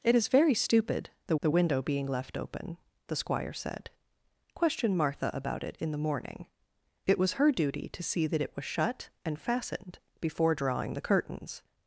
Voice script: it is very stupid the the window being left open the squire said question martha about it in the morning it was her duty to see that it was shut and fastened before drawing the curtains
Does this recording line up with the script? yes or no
yes